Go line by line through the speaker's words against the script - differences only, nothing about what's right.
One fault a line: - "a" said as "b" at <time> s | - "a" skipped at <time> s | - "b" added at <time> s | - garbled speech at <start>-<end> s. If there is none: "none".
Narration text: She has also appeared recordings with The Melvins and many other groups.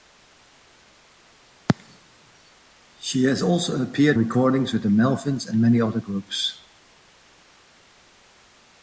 none